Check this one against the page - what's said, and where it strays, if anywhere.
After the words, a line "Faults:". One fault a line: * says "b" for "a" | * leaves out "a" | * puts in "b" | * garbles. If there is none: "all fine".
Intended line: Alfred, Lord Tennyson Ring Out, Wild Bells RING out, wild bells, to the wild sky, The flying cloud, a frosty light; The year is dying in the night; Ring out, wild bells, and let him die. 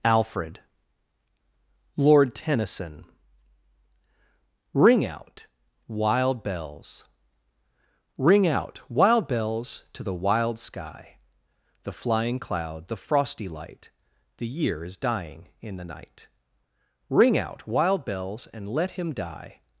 Alfred, Lord Tennyson Ring Out, Wild Bells RING out, wild bells, to the wild sky, The flying cloud, the frosty light; The year is dying in the night; Ring out, wild bells, and let him die.
Faults:
* says "the" for "a"